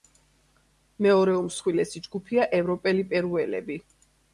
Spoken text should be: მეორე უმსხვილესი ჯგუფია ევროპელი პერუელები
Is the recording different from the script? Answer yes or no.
no